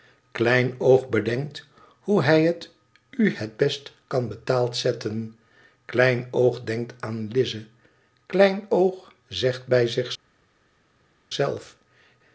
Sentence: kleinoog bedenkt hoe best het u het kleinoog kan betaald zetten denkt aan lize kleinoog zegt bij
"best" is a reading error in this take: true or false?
true